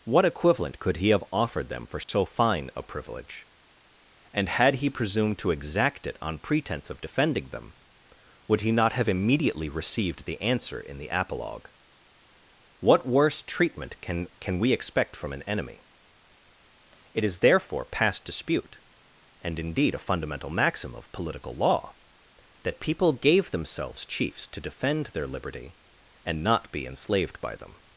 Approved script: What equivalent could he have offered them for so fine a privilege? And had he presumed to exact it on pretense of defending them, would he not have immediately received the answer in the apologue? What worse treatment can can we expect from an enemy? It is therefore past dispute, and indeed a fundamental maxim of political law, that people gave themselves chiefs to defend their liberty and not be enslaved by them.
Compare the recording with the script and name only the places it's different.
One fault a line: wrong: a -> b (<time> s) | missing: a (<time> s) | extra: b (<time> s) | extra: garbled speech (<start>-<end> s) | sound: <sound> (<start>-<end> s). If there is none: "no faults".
sound: dropout (2.0-2.1 s)